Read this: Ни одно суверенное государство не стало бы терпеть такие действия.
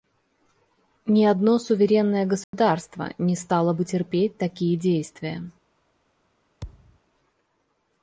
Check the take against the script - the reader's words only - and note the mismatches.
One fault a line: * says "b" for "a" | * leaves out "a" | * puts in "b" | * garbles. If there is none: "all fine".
all fine